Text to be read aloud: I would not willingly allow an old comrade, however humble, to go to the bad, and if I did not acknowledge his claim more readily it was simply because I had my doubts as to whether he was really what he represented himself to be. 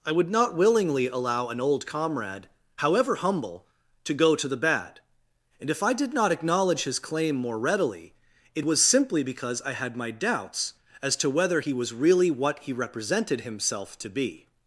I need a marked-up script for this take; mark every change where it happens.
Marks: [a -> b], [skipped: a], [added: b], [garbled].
I would not willingly allow an old comrade, however humble, to go to the bad, and if I did not acknowledge his claim more readily it was simply because I had my doubts as to whether he was really what he represented himself to be.